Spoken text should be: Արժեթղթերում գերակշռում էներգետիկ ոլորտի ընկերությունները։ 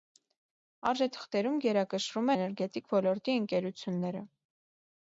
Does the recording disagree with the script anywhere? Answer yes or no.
no